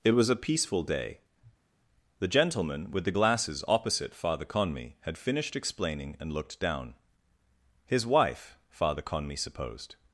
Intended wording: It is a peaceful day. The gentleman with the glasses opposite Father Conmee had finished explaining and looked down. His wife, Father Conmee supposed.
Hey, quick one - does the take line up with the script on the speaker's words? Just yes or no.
no